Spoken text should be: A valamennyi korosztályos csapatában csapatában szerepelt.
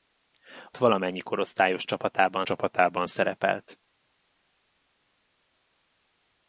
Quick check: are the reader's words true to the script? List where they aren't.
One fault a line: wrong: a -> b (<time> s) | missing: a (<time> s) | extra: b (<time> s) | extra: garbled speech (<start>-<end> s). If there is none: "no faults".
no faults